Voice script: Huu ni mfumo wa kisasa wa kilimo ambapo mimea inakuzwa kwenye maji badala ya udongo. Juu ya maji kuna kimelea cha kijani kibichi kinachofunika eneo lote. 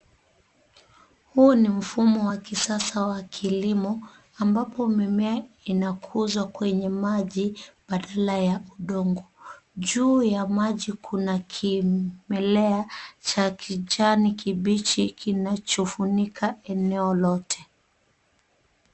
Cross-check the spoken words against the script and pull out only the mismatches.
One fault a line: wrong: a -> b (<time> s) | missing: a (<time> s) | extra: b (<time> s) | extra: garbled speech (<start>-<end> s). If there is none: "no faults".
no faults